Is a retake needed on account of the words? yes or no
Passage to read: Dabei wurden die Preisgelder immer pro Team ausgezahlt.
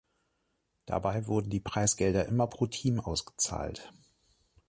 no